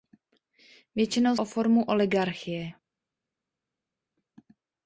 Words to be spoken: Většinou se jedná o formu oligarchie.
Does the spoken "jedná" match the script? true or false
false